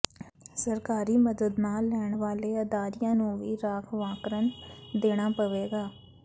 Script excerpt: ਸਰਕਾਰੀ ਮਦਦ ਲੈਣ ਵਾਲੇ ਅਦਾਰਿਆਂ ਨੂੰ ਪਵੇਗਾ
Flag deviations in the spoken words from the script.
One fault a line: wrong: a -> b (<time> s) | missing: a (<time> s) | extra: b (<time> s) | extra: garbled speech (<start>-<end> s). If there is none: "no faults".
extra: ਨਾ (1.6 s)
extra: ਵੀ ਰਾਖਵਾਂਕਰਨ ਦੇਣਾ (3.4 s)